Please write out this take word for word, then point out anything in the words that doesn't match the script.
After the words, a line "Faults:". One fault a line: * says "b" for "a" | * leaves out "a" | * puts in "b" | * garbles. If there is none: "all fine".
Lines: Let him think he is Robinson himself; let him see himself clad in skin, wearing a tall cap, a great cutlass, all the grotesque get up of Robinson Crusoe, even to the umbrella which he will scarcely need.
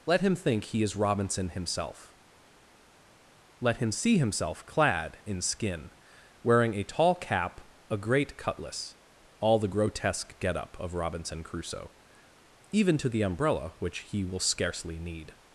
Let him think he is Robinson himself; let him see himself clad in skin, wearing a tall cap, a great cutlass, all the grotesque get up of Robinson Crusoe, even to the umbrella which he will scarcely need.
Faults:
all fine